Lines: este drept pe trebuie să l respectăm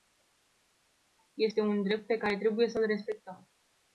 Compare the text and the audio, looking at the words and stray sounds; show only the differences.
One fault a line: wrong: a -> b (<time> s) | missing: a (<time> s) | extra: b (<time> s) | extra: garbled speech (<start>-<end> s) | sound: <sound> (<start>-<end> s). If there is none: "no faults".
extra: un (1.6 s)
extra: care (2.2 s)